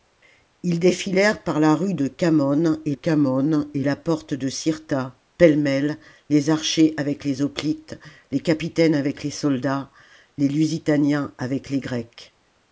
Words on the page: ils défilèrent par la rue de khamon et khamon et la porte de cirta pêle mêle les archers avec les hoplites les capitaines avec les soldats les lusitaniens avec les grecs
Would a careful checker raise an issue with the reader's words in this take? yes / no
no